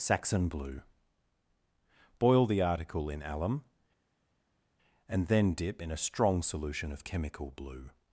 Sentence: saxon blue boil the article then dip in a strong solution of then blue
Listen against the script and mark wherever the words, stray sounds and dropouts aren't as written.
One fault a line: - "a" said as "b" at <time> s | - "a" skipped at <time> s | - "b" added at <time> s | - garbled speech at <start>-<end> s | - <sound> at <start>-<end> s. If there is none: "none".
- "in alum and" added at 3.1 s
- "then" said as "chemical" at 7.0 s